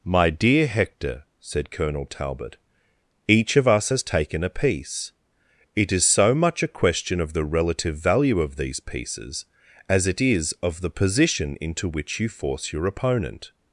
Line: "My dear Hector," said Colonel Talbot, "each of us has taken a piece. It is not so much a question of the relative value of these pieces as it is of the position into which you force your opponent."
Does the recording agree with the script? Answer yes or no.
no